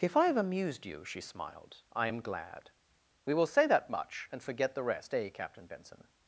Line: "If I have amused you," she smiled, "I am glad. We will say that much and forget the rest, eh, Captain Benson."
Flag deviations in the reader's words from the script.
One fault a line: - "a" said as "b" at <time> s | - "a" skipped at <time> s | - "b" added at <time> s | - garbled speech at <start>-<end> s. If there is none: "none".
none